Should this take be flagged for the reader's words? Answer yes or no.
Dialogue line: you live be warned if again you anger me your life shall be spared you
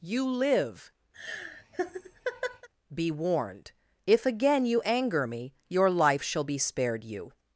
no